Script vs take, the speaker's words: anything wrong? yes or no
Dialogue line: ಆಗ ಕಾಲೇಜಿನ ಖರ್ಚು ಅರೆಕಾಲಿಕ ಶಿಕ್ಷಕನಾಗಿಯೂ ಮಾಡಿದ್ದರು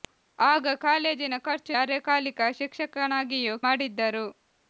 no